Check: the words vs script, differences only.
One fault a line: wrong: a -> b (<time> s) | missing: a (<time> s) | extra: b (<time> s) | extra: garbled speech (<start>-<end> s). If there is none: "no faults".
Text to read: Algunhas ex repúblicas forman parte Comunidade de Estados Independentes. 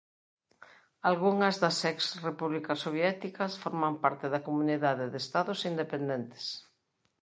extra: das (1.6 s)
extra: soviéticas (2.9 s)
extra: da (4.3 s)